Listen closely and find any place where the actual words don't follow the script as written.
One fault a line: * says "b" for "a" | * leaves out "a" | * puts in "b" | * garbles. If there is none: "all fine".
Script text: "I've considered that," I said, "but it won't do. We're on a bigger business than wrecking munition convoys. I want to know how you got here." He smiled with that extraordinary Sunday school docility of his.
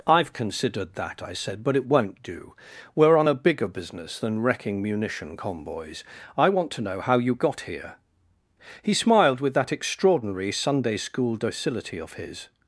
all fine